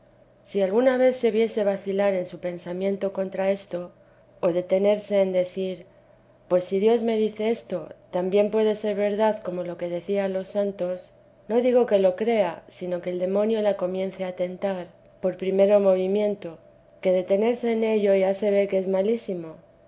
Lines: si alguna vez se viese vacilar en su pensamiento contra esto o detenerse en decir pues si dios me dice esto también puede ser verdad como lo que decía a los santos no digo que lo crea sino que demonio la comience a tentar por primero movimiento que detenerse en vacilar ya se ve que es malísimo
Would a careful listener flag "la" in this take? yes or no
no